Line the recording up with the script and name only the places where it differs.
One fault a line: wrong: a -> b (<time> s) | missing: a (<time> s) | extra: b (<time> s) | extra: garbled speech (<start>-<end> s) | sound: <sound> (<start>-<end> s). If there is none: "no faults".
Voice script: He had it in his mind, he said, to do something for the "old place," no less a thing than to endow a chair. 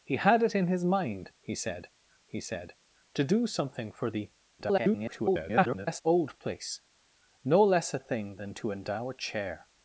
extra: he said (2.3 s)
extra: garbled speech (4.6-6.0 s)